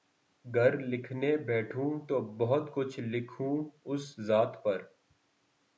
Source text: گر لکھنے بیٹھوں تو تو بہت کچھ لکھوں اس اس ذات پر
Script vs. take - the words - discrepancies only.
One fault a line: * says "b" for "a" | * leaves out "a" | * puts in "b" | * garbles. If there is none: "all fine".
* leaves out "تو"
* leaves out "اس"